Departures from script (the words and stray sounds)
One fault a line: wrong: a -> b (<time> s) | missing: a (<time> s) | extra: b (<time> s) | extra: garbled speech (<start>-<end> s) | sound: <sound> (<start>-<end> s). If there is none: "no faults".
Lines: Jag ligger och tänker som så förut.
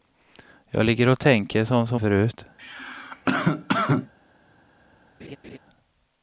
sound: cough (2.6-4.1 s)
sound: laugh (5.2-5.6 s)